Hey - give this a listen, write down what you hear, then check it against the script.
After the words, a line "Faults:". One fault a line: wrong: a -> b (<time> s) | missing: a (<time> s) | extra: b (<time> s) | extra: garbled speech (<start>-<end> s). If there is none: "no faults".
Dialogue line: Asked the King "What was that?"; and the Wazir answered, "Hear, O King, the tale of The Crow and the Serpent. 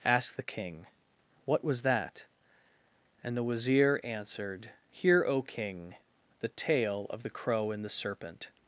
Asked the King "What was that?"; and the Wazir answered, "Hear, O King, the tale of The Crow and the Serpent.
Faults:
no faults